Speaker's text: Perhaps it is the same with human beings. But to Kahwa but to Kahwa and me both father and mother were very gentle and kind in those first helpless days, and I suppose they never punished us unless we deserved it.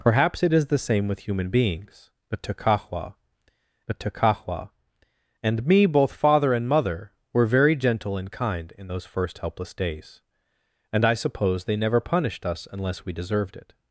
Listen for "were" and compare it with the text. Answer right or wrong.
right